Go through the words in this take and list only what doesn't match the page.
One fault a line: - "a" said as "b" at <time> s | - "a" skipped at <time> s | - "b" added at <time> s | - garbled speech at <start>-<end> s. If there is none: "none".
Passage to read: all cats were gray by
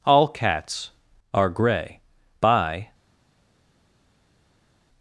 - "were" said as "are" at 1.3 s